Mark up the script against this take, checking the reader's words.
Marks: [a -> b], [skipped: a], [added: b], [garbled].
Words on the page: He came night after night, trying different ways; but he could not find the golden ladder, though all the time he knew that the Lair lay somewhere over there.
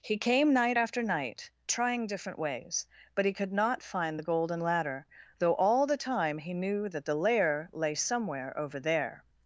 He came night after night, trying different ways; but he could not find the golden ladder, though all the time he knew that the Lair lay somewhere over there.